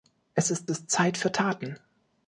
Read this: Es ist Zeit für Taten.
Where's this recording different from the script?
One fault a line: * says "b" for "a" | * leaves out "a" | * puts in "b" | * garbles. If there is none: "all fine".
* puts in "ist"